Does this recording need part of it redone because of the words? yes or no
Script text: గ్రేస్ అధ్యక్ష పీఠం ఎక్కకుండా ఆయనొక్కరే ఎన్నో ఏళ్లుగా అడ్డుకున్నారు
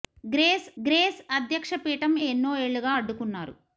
yes